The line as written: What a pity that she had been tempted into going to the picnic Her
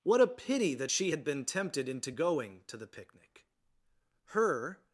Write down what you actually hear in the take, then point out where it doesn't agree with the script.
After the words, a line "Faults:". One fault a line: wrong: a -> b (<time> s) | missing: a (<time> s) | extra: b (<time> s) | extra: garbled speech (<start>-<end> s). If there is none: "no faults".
What a pity that she had been tempted into going to the picnic Her
Faults:
no faults